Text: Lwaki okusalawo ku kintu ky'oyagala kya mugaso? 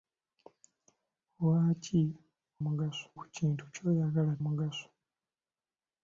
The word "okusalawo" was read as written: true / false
false